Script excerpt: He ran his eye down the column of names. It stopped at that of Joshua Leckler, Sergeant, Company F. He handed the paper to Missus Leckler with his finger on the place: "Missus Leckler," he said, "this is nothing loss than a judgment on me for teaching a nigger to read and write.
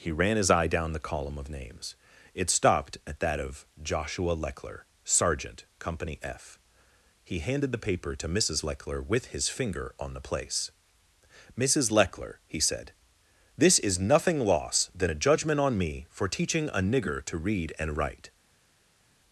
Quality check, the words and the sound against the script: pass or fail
pass